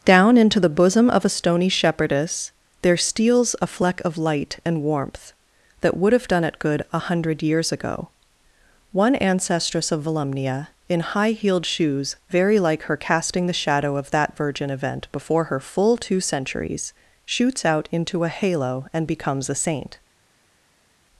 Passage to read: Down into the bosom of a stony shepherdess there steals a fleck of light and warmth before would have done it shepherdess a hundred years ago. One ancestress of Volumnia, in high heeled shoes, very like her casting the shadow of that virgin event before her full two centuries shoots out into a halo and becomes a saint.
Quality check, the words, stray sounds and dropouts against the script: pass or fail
fail